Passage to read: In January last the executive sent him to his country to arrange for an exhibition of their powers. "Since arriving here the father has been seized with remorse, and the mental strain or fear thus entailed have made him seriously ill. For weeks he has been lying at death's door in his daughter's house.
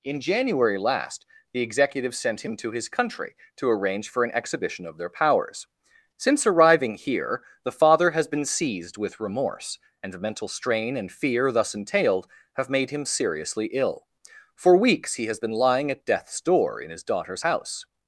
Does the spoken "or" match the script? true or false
false